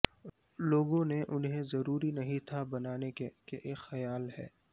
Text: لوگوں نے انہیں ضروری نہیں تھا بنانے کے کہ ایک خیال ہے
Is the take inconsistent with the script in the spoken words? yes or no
no